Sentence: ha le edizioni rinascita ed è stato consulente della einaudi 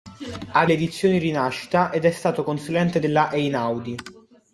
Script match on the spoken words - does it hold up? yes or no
yes